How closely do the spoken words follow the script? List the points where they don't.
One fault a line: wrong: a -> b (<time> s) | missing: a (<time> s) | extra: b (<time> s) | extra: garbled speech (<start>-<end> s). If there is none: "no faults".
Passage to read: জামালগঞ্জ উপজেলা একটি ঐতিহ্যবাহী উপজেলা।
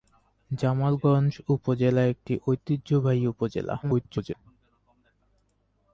extra: garbled speech (3.8-4.3 s)